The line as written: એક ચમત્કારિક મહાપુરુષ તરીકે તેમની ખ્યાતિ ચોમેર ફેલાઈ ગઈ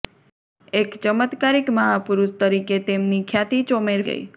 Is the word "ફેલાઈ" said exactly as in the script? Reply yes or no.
no